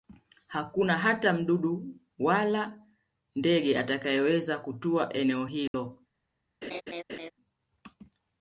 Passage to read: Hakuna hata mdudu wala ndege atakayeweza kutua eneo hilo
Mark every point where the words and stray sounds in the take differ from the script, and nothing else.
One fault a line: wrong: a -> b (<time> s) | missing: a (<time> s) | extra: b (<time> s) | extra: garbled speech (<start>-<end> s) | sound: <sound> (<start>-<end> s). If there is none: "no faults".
sound: dropout (5.7-5.7 s)
sound: laugh (6.6-7.3 s)